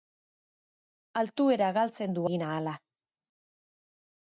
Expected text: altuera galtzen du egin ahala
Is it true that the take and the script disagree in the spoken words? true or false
false